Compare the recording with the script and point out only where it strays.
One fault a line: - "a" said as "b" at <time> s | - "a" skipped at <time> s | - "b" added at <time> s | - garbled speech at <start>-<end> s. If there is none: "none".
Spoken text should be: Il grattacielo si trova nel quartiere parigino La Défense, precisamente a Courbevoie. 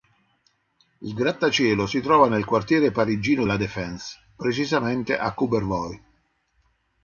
none